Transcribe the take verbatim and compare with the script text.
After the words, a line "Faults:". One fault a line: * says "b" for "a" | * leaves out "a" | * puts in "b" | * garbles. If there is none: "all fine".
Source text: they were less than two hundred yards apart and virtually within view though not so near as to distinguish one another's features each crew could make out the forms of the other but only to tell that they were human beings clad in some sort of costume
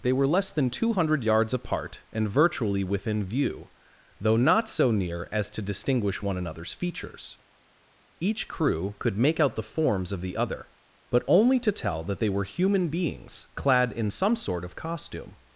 they were less than two hundred yards apart and virtually within view though not so near as to distinguish one another's features each crew could make out the forms of the other but only to tell that they were human beings clad in some sort of costume
Faults:
all fine